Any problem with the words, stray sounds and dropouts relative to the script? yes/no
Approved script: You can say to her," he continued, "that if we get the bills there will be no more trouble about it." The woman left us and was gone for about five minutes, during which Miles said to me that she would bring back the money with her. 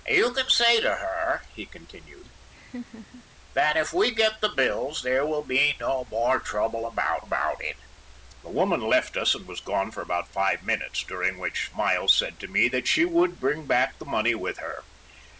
yes